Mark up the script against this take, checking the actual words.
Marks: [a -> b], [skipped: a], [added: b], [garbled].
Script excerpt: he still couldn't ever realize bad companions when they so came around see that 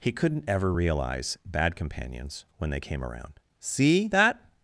he [skipped: still] couldn't ever realize bad companions when they [skipped: so] came around see that